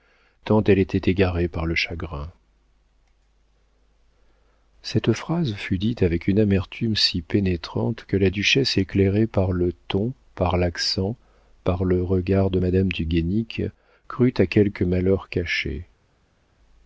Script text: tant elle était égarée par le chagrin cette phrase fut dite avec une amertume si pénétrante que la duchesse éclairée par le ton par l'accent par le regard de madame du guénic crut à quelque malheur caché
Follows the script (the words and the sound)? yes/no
yes